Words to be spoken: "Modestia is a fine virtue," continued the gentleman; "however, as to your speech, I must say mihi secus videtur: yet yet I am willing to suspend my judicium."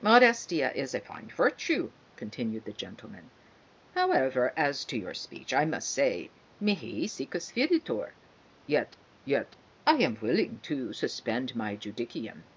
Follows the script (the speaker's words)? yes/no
yes